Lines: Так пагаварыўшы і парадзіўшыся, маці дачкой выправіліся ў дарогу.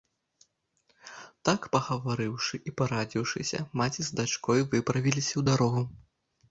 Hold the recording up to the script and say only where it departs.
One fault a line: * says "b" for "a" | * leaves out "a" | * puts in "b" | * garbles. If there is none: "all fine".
* puts in "з"